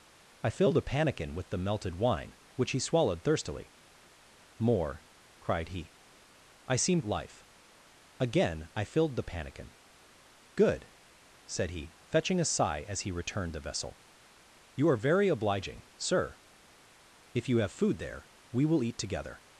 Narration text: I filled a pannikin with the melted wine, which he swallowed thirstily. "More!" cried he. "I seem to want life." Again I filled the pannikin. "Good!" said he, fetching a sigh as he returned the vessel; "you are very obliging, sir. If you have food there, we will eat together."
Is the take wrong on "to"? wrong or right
wrong